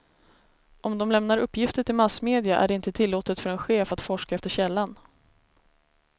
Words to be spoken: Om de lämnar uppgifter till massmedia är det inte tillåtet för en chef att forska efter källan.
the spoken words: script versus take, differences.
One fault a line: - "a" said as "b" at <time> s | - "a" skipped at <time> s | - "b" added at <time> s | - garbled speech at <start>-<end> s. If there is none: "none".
none